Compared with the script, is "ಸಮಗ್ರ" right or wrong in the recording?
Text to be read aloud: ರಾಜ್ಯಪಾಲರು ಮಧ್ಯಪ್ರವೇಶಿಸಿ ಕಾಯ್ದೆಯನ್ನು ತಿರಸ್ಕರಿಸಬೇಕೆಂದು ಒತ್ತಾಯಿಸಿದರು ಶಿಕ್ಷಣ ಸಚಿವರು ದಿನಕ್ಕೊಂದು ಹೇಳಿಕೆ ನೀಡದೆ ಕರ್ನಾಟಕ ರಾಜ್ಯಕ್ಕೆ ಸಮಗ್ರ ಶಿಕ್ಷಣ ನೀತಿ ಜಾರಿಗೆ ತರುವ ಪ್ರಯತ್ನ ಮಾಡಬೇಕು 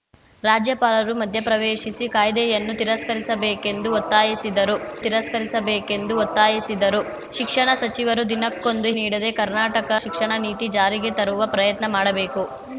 wrong